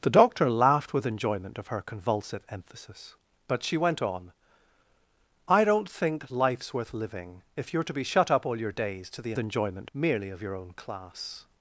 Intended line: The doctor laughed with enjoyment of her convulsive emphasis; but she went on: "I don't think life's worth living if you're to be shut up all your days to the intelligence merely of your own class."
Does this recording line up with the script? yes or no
no